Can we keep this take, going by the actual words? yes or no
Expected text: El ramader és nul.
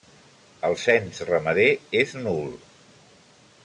no